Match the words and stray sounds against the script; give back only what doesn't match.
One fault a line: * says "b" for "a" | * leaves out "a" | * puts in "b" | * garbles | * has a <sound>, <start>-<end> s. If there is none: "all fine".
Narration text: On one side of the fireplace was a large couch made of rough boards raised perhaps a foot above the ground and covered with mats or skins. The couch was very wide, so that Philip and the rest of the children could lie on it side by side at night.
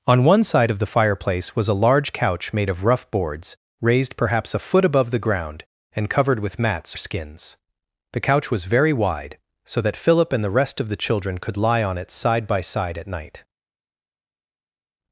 * leaves out "or"